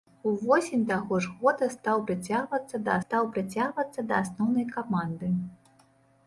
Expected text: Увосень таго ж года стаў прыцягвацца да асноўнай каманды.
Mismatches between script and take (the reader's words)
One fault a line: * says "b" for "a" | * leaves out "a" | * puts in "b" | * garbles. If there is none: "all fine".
* puts in "стаў прыцягвацца да"